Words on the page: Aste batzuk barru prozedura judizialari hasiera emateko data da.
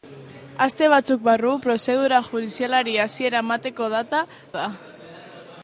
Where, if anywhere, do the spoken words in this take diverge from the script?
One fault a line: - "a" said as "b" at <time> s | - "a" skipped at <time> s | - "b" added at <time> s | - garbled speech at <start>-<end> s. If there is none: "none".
none